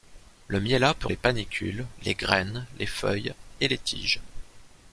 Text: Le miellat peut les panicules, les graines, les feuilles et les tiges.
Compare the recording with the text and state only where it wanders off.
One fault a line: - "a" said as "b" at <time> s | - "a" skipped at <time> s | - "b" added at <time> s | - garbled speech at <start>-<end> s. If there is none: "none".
none